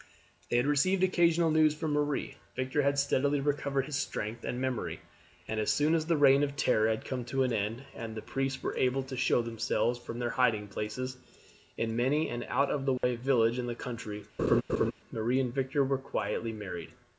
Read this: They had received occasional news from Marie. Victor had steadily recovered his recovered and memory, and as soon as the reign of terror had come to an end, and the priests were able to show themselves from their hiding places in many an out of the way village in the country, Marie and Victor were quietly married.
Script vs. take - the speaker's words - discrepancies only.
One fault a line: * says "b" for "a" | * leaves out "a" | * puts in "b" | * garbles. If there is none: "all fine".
* says "strength" for "recovered"